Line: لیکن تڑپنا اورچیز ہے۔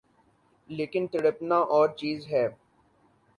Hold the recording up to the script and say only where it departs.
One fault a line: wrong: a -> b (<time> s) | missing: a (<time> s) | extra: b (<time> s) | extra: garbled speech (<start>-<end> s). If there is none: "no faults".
no faults